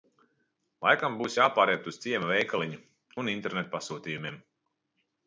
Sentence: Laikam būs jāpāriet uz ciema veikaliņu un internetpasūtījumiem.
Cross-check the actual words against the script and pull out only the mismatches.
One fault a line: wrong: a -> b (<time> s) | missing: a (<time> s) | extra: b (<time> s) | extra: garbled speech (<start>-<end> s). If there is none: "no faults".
no faults